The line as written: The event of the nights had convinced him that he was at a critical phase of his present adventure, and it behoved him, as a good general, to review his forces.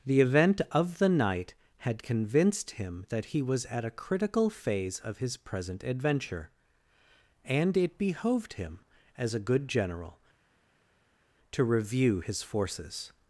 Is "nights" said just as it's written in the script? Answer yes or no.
no